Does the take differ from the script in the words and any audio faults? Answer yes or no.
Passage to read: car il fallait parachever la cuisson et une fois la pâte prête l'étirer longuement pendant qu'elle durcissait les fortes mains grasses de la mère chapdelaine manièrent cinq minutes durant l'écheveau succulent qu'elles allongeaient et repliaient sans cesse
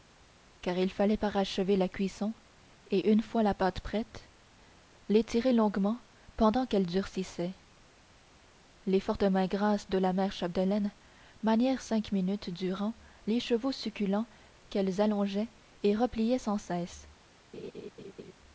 yes